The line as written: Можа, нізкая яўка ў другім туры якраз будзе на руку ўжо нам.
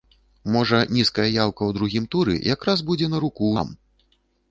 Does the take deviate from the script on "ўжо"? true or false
true